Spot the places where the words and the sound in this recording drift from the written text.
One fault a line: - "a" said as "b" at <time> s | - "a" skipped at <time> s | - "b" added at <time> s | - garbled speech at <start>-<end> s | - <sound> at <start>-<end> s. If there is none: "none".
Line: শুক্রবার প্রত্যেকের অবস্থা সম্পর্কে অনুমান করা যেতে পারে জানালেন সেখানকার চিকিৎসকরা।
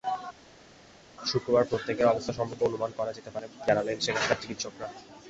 none